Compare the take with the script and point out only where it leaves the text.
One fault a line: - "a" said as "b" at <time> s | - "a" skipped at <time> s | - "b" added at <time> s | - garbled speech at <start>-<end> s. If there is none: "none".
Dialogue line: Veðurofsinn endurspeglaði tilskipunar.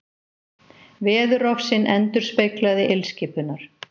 none